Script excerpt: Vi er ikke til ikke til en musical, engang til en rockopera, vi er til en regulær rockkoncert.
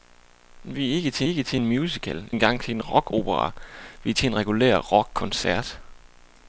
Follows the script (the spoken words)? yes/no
yes